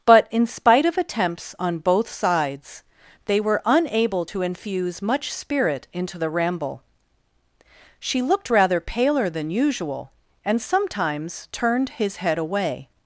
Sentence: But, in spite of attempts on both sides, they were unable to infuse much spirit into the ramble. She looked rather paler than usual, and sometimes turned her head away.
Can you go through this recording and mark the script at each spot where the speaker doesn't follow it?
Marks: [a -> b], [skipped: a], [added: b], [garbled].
But, in spite of attempts on both sides, they were unable to infuse much spirit into the ramble. She looked rather paler than usual, and sometimes turned [her -> his] head away.